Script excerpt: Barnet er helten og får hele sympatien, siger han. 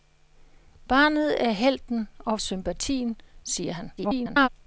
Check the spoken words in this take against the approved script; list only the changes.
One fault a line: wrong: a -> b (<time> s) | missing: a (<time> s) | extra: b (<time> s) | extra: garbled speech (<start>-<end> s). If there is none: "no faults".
missing: får hele (2.4 s)
extra: garbled speech (4.0-4.5 s)